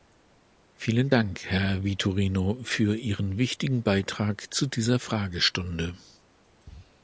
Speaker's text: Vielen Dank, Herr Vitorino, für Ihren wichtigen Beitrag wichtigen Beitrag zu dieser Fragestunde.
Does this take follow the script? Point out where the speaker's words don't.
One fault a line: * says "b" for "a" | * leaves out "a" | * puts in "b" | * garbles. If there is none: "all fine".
* leaves out "wichtigen Beitrag"